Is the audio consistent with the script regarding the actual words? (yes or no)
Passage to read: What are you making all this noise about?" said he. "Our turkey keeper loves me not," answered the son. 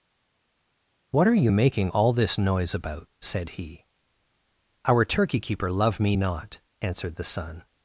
no